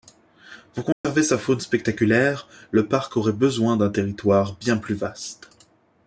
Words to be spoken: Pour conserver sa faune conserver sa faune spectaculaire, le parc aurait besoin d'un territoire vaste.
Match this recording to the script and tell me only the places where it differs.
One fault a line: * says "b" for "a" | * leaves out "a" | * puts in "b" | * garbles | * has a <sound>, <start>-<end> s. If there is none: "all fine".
* has a dropout, 0.9-1.0 s
* leaves out "conserver sa faune"
* puts in "bien plus"